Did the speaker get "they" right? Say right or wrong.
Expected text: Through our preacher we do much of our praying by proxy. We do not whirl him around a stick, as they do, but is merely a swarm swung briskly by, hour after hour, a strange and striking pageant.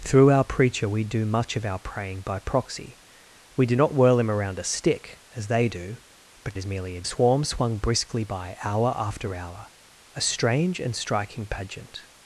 right